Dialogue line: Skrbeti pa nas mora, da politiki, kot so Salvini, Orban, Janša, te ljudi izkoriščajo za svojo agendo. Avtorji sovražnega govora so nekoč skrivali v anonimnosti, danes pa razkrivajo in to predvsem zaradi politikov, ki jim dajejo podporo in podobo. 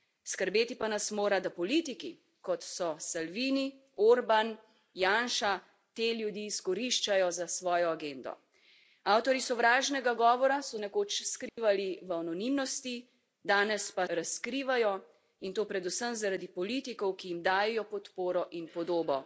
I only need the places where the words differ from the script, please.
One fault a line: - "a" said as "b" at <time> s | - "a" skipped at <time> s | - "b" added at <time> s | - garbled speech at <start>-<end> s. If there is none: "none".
none